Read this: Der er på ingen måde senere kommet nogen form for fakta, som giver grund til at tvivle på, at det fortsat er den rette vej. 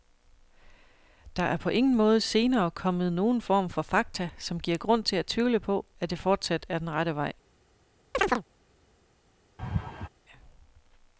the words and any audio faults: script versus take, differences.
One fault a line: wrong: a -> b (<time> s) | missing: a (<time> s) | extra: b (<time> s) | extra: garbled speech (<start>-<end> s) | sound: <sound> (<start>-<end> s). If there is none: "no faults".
sound: chirp (8.1-8.4 s)
sound: laugh (9.6-10.1 s)